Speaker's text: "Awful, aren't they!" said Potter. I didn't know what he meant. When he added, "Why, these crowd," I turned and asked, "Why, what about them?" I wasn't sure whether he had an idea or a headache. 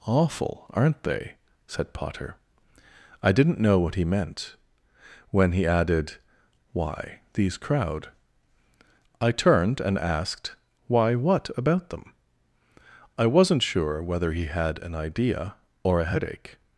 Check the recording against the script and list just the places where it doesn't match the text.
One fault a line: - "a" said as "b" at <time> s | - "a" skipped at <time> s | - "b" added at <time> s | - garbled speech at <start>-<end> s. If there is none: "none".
none